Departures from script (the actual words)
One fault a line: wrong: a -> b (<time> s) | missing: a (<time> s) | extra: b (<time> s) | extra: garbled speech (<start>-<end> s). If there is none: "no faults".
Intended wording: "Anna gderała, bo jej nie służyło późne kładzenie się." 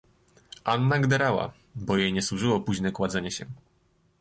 no faults